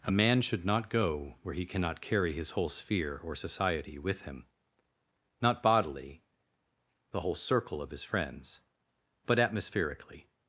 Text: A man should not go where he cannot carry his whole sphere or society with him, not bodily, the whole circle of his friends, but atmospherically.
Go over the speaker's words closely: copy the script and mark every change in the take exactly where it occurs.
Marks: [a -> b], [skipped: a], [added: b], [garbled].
A man should not go where he cannot carry his whole sphere or society with him, not bodily, the whole circle of his friends, but atmospherically.